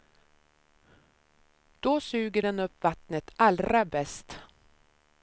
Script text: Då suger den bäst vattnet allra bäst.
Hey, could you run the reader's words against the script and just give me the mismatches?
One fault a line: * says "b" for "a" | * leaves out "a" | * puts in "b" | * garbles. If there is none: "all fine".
* says "upp" for "bäst"